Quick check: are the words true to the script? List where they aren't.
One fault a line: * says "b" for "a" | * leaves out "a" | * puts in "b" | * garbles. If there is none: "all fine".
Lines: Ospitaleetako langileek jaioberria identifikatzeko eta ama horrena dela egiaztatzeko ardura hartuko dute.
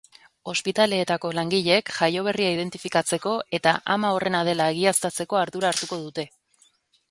all fine